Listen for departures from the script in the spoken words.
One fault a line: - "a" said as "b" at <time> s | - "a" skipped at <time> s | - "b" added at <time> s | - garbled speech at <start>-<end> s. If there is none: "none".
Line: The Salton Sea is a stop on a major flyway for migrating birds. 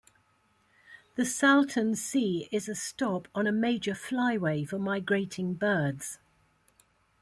none